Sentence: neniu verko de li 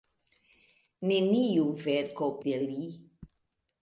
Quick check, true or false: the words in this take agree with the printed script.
true